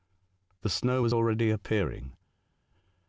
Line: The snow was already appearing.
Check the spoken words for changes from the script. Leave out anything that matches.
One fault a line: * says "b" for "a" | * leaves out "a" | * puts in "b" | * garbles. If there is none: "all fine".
all fine